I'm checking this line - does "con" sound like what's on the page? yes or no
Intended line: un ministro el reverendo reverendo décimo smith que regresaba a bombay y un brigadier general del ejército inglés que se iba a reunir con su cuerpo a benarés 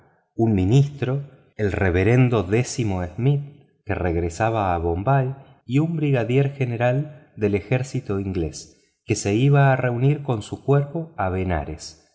yes